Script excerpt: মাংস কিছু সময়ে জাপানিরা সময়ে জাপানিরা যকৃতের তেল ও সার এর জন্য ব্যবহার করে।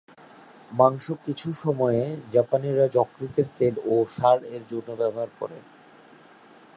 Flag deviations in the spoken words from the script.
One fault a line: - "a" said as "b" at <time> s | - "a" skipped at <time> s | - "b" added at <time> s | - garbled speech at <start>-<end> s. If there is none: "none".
- "সময়ে জাপানিরা" skipped at 2.9 s